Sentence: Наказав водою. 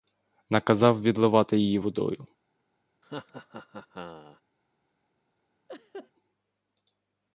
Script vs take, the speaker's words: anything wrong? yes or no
yes